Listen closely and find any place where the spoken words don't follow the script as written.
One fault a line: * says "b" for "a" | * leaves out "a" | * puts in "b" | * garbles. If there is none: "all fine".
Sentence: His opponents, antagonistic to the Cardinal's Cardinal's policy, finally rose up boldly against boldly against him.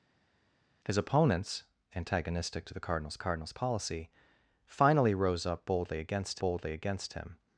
all fine